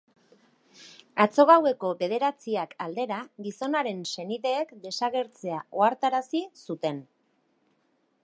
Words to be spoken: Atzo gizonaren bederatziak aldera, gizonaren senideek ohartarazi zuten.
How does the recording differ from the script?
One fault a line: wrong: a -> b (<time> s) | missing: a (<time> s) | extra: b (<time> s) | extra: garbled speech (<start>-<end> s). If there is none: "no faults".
wrong: gizonaren -> gaueko (1.5 s)
extra: desagertzea (4.9 s)